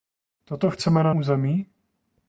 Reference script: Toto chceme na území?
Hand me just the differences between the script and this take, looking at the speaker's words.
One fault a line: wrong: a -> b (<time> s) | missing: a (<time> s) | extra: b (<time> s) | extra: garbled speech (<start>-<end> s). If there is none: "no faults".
no faults